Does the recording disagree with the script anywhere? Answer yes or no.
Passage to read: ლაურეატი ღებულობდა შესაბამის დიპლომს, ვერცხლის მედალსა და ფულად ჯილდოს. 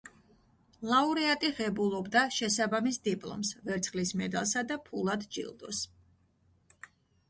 no